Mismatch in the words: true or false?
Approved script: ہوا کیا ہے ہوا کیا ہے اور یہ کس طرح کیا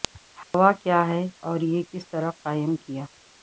true